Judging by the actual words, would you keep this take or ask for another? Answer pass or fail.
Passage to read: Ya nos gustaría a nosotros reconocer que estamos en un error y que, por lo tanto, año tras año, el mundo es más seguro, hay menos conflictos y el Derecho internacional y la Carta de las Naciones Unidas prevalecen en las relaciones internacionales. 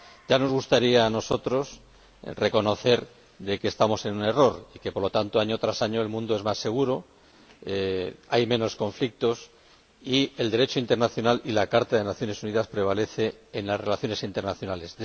pass